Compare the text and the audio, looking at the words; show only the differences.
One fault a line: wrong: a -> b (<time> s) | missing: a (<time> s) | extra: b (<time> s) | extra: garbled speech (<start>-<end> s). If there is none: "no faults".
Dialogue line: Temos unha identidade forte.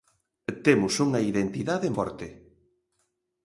no faults